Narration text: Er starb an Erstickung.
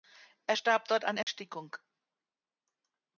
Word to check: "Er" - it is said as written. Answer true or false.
true